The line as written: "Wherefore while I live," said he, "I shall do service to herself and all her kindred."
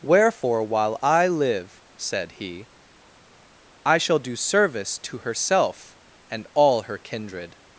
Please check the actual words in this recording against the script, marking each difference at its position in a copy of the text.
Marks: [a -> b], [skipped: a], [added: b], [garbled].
"Wherefore while I live," said he, "I shall do service to herself and all her kindred."